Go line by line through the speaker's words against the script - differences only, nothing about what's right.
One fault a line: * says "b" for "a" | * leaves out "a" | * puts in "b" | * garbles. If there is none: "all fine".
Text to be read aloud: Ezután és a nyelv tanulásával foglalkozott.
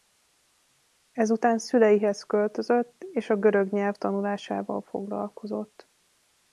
* puts in "szüleihez költözött"
* puts in "görög"